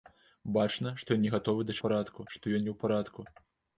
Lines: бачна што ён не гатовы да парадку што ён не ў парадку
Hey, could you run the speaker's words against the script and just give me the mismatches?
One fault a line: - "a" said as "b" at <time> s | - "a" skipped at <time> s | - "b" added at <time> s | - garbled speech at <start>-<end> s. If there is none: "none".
none